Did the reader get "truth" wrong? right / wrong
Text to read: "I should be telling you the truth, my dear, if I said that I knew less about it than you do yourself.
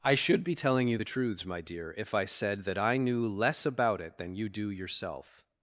wrong